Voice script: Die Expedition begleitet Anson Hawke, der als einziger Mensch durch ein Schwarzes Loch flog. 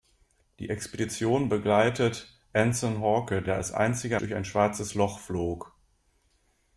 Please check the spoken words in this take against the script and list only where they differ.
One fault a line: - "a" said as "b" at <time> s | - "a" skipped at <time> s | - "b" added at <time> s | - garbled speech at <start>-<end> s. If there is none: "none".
- "Mensch" skipped at 4.2 s